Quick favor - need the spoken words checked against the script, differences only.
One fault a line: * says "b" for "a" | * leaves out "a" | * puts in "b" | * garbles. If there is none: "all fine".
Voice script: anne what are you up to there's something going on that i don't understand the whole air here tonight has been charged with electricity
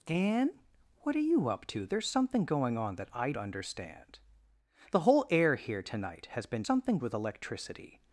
* leaves out "don't"
* says "something" for "charged"